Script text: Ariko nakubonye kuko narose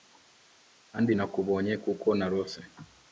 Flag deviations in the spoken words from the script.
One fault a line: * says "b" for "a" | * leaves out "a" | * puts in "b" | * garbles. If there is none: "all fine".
* says "Kandi" for "Ariko"